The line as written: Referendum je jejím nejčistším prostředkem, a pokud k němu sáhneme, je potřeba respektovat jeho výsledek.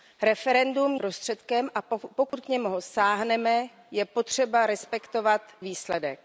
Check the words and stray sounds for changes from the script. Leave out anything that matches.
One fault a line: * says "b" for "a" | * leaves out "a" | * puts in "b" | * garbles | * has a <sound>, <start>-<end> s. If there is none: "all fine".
* leaves out "je jejím nejčistším"
* has a dropout, 2.3-2.3 s
* leaves out "jeho"